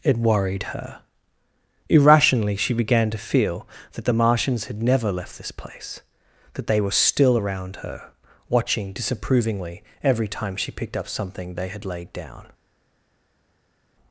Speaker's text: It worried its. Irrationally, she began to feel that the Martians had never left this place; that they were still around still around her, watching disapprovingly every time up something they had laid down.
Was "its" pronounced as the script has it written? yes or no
no